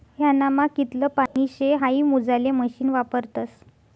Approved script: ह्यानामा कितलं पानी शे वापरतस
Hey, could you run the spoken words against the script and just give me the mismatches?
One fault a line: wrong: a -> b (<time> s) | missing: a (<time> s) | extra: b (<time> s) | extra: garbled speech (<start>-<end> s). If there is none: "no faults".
extra: हाई मोजाले मशीन (1.8 s)